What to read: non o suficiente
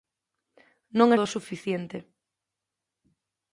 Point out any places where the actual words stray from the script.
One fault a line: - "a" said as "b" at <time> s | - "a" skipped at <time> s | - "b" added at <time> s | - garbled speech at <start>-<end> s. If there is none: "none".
none